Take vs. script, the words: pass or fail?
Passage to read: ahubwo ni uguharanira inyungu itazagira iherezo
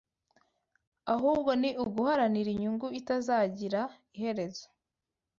pass